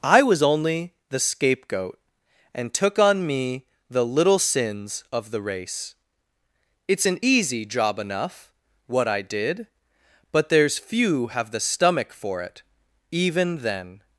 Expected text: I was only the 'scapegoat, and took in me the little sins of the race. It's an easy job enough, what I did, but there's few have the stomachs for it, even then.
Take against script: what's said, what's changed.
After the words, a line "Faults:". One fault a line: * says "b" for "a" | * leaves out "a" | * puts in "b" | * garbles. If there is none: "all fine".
I was only the 'scapegoat, and took on me the little sins of the race. It's an easy job enough, what I did, but there's few have the stomach for it, even then.
Faults:
* says "on" for "in"
* says "stomach" for "stomachs"